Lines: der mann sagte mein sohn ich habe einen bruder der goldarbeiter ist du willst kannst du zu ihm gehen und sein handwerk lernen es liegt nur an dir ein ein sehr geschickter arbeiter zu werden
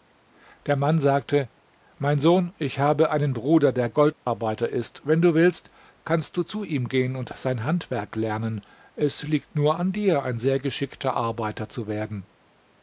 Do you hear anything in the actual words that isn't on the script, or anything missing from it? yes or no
yes